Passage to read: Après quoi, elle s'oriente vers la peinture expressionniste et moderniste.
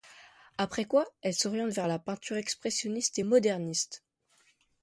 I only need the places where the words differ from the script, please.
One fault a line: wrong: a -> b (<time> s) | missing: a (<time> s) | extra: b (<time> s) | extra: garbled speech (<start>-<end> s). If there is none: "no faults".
no faults